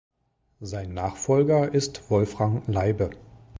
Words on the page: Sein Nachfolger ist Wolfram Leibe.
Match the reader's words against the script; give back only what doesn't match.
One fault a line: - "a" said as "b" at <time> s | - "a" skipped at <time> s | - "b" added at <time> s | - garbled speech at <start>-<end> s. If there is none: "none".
none